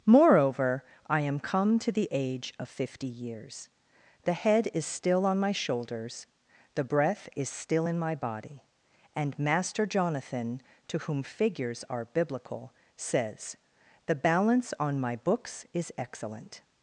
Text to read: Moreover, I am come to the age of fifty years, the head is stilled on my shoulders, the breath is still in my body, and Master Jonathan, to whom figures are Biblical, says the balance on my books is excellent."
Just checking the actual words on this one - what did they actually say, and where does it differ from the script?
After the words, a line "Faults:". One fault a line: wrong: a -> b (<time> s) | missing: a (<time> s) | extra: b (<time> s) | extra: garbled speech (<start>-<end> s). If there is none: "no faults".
Moreover, I am come to the age of fifty years, the head is still on my shoulders, the breath is still in my body, and Master Jonathan, to whom figures are Biblical, says the balance on my books is excellent."
Faults:
wrong: stilled -> still (4.8 s)